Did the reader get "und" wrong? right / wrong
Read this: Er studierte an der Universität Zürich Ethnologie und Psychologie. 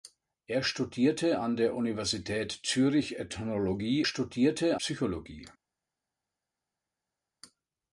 wrong